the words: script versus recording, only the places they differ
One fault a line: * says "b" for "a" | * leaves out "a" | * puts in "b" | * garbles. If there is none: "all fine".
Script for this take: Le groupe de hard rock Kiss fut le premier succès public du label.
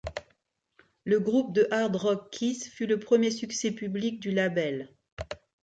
all fine